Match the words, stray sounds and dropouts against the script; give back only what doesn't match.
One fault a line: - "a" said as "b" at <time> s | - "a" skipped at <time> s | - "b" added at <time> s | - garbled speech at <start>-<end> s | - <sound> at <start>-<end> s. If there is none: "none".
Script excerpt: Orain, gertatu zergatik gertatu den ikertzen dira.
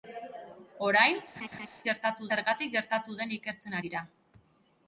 - laugh at 1.4-1.7 s